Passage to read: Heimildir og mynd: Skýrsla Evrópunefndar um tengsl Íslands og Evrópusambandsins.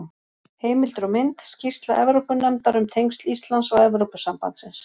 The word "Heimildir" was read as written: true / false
true